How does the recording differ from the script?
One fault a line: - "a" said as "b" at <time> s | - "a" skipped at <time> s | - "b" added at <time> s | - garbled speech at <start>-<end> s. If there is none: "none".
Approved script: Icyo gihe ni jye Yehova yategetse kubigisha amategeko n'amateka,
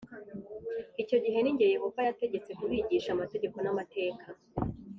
none